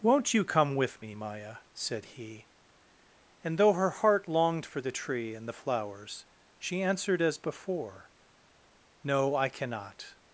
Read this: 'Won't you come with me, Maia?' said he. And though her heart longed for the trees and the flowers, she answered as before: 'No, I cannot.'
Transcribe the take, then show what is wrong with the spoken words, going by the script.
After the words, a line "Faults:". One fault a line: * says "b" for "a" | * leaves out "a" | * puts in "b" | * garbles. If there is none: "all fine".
'Won't you come with me, Maia?' said he. And though her heart longed for the tree and the flowers, she answered as before: 'No, I cannot.'
Faults:
* says "tree" for "trees"